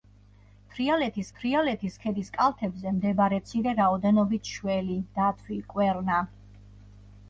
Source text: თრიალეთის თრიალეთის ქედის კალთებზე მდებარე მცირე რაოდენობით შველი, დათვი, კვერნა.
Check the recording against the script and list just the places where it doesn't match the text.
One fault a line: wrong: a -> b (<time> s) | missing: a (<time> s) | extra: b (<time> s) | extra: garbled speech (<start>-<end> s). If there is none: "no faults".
no faults